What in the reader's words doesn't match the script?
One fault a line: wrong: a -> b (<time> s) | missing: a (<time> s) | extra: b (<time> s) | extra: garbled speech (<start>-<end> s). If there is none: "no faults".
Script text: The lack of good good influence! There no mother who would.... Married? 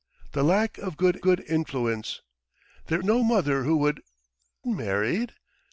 no faults